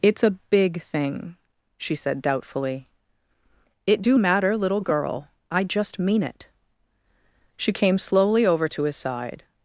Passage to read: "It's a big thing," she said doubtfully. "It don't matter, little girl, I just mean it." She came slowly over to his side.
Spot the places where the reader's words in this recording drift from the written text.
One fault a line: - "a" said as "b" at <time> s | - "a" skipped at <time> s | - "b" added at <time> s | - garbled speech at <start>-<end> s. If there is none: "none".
- "don't" said as "do" at 4.0 s